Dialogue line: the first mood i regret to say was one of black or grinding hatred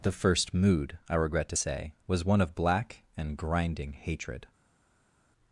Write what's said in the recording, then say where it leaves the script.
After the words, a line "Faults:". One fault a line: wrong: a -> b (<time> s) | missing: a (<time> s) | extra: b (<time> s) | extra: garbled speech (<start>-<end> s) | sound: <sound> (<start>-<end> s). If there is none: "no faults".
the first mood i regret to say was one of black and grinding hatred
Faults:
wrong: or -> and (3.2 s)